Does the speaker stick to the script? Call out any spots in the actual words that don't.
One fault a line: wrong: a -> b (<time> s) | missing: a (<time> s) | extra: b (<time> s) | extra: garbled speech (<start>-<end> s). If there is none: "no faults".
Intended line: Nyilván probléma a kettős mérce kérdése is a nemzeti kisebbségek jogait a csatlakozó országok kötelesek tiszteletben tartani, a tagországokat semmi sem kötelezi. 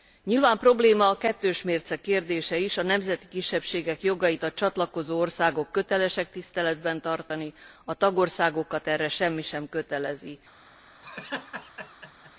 extra: erre (8.9 s)